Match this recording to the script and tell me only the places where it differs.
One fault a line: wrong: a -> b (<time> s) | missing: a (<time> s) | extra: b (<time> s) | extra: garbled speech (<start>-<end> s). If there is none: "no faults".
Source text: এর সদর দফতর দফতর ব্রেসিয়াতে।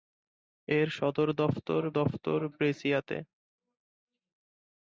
no faults